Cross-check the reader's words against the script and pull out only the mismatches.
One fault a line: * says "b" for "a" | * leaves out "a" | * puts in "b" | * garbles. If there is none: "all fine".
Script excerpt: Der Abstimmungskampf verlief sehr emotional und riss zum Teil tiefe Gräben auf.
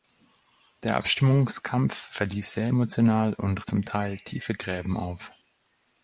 * leaves out "riss"